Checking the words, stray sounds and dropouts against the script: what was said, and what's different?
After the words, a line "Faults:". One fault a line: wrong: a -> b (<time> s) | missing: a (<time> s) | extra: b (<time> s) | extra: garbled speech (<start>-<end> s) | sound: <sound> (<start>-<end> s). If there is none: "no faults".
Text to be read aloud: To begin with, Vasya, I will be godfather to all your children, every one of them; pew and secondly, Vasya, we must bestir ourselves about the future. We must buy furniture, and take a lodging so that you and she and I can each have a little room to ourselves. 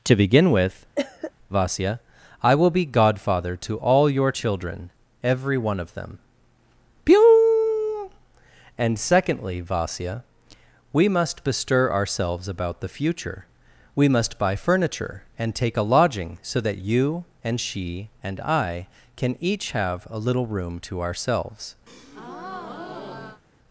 To begin with, Vasya, I will be godfather to all your children, every one of them; pew and secondly, Vasya, we must bestir ourselves about the future. We must buy furniture, and take a lodging so that you and she and I can each have a little room to ourselves.
Faults:
sound: cough (1.0-1.3 s)
sound: breath (21.9-23.4 s)